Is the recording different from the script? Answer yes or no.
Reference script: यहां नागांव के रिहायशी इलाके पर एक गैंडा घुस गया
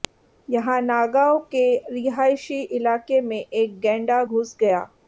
yes